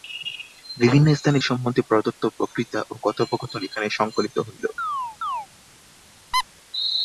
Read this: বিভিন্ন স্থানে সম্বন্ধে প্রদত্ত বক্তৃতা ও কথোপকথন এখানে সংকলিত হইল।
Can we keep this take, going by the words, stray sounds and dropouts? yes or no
no